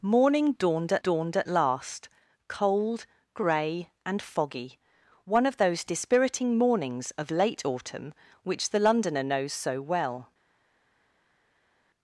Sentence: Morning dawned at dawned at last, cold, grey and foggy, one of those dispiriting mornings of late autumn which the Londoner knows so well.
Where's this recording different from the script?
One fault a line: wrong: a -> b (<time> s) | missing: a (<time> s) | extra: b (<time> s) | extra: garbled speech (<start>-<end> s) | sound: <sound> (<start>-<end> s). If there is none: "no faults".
no faults